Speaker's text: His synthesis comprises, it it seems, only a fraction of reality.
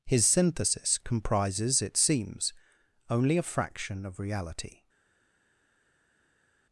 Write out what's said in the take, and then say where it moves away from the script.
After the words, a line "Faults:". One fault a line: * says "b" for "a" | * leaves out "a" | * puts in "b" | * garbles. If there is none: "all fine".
His synthesis comprises, it seems, only a fraction of reality.
Faults:
* leaves out "it"